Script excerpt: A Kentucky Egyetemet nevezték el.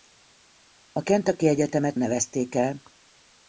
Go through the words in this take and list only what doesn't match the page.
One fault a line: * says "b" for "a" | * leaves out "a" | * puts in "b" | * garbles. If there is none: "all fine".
all fine